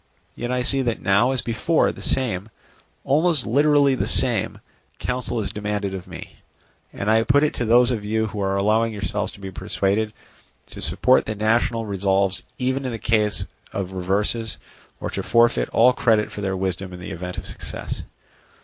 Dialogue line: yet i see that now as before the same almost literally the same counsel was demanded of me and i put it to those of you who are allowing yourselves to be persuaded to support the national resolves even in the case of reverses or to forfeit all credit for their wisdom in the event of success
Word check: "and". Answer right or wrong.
right